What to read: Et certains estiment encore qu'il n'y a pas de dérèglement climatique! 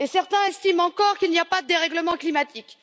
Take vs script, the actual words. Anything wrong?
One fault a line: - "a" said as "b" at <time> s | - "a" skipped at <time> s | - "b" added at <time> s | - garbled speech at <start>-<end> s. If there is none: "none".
none